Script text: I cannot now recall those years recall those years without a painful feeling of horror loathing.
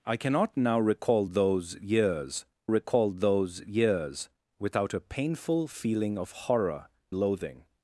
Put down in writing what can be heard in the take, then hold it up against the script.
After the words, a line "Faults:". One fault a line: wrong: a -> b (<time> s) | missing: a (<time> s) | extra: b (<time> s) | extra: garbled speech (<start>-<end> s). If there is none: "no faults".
I cannot now recall those years recall those years without a painful feeling of horror loathing.
Faults:
no faults